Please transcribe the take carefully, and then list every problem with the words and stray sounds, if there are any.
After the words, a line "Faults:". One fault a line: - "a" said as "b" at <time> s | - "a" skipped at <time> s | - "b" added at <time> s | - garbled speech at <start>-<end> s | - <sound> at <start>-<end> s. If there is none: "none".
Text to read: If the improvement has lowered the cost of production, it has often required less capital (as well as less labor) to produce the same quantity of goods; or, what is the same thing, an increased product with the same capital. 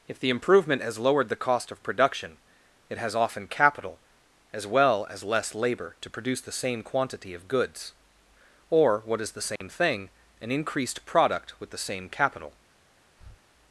If the improvement has lowered the cost of production, it has often capital (as well as less labor) to produce the same quantity of goods; or, what is the same thing, an increased product with the same capital.
Faults:
- "required less" skipped at 3.5 s
- dropout at 9.6-9.6 s
- breath at 13.2-13.4 s